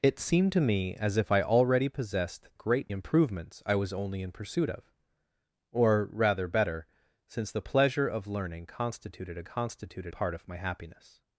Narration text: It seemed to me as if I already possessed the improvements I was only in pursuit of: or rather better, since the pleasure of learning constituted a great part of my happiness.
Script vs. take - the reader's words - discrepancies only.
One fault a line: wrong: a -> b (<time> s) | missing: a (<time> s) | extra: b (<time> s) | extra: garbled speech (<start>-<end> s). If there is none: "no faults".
wrong: the -> great (2.5 s)
wrong: great -> constituted (9.4 s)